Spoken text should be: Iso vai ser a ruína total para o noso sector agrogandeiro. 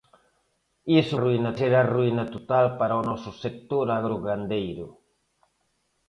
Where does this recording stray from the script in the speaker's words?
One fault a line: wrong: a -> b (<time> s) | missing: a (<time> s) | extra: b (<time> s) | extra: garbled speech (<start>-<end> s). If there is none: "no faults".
wrong: vai -> ruína (1.2 s)